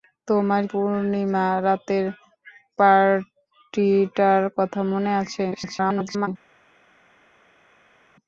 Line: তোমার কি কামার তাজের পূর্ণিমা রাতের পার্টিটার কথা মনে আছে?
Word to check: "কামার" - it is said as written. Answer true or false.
false